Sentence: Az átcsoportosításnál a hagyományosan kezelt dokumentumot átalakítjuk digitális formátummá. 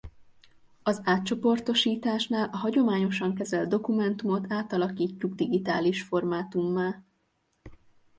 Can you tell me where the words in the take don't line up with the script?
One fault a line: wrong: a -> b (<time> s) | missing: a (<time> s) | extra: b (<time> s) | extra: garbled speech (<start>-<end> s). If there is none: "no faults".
no faults